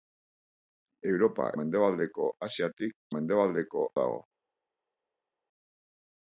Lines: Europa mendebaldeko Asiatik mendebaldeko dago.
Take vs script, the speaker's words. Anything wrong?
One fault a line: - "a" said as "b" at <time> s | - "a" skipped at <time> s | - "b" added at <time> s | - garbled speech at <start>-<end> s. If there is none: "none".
none